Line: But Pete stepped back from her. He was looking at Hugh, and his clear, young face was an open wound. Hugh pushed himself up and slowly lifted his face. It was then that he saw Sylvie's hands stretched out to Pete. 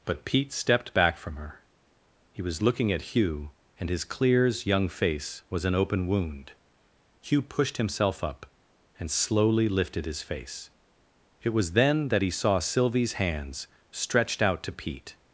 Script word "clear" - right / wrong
wrong